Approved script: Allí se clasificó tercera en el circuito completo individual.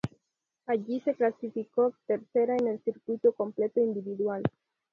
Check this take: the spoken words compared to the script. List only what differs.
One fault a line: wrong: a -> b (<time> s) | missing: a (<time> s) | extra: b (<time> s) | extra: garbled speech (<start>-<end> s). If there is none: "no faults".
no faults